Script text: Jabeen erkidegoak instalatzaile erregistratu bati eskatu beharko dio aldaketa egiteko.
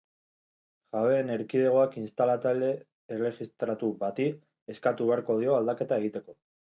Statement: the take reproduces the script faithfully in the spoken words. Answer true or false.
true